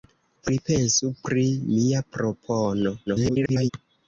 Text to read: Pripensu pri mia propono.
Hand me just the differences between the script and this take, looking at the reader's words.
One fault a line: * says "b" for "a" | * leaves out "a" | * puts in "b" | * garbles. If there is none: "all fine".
* garbles